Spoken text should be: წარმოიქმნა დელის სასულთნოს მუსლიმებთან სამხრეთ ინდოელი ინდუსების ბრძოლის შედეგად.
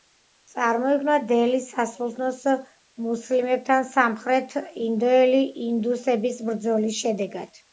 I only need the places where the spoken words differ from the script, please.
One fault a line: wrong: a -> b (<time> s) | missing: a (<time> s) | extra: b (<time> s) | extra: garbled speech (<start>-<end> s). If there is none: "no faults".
no faults